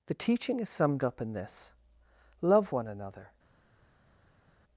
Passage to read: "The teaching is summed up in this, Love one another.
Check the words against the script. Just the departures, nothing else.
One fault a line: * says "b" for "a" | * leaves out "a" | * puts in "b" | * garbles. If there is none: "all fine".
all fine